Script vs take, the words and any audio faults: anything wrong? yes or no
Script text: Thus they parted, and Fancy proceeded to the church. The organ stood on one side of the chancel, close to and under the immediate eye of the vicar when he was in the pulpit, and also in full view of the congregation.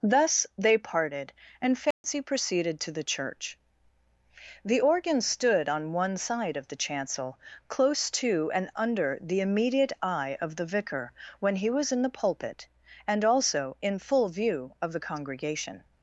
yes